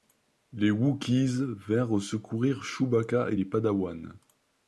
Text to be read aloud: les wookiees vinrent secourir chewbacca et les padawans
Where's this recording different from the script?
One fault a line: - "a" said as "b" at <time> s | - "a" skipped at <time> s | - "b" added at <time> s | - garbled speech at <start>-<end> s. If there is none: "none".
none